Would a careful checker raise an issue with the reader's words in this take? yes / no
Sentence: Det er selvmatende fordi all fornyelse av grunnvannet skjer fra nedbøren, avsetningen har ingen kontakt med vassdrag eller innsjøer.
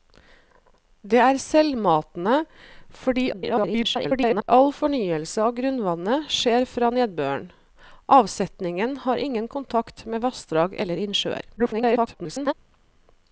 yes